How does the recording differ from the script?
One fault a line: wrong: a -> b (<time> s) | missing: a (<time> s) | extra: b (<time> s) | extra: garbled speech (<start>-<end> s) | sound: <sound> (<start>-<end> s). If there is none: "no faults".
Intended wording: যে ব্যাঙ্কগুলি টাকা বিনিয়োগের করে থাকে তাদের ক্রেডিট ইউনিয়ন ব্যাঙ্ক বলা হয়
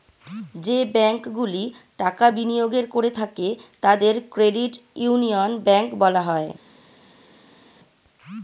no faults